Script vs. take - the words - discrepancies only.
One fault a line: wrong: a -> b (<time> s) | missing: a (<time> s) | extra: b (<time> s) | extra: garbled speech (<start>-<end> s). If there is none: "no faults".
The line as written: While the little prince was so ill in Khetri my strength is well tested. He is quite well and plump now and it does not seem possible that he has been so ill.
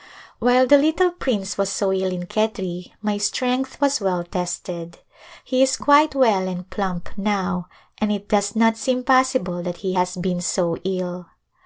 wrong: is -> was (3.8 s)